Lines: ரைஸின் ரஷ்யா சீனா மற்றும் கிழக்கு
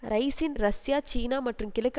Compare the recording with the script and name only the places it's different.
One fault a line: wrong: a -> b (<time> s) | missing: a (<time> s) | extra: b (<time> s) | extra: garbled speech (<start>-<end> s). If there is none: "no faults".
no faults